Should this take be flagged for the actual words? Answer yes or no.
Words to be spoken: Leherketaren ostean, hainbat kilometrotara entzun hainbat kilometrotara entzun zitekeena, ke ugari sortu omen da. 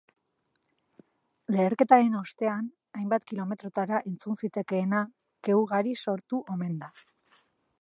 yes